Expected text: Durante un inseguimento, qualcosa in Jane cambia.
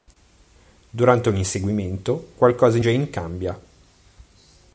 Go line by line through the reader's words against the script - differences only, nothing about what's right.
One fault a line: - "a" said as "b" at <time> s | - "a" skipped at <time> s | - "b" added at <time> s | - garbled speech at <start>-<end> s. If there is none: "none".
- "in" skipped at 2.8 s